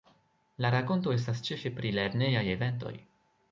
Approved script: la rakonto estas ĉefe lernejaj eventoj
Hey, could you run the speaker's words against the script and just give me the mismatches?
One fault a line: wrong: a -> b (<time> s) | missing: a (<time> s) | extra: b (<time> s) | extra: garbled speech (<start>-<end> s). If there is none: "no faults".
extra: pri (1.8 s)